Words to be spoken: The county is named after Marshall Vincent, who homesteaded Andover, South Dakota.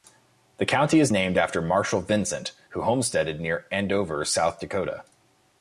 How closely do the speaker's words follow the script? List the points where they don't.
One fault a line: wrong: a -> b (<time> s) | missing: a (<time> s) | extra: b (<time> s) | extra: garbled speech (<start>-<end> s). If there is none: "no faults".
extra: near (3.4 s)